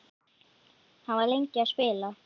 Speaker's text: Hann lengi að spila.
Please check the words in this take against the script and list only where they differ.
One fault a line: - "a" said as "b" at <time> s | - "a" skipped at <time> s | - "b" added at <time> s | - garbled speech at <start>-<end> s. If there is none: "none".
- "var" added at 1.2 s